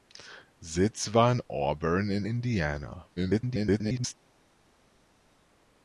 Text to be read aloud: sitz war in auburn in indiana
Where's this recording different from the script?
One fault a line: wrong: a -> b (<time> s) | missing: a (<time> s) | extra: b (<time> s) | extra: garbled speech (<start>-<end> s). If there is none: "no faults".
extra: garbled speech (3.2-4.1 s)